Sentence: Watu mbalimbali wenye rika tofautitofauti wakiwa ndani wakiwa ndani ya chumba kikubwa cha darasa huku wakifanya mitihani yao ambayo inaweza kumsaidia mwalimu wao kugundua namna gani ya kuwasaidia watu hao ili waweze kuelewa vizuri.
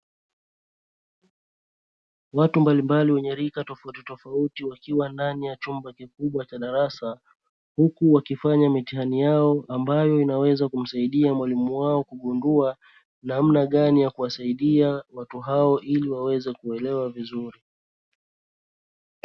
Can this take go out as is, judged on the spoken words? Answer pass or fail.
fail